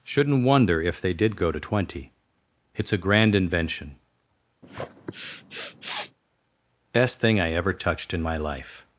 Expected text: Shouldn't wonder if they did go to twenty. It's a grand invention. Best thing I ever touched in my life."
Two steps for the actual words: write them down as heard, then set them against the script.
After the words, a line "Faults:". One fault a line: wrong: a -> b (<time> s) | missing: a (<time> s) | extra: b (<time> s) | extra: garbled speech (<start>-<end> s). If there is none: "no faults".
Shouldn't wonder if they did go to twenty. It's a grand invention. Best thing I ever touched in my life."
Faults:
no faults